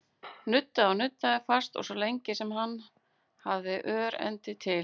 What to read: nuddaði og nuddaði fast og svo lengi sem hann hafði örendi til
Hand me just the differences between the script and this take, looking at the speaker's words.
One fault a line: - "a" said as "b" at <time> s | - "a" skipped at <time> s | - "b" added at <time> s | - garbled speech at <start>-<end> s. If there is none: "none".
none